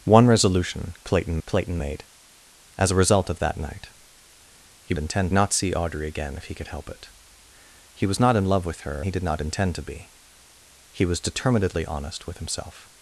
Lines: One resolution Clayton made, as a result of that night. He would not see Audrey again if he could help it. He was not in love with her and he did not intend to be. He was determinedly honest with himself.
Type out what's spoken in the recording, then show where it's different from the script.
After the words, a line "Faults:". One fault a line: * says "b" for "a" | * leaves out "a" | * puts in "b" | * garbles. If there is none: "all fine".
One resolution Clayton Clayton made, as a result of that night. He intend not see Audrey again if he could help it. He was not in love with her he did not intend to be. He was determinedly honest with himself.
Faults:
* puts in "Clayton"
* says "intend" for "would"
* leaves out "and"